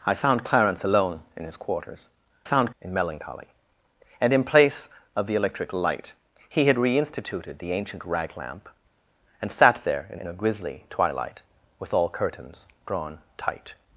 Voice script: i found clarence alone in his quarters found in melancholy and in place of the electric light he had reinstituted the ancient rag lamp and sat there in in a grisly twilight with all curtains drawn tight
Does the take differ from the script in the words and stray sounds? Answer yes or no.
no